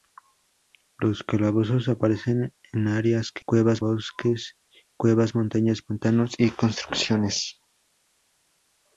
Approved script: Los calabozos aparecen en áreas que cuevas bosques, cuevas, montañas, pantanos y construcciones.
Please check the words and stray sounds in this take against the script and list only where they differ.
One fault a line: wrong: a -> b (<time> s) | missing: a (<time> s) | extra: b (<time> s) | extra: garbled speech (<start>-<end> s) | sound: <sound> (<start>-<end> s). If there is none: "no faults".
no faults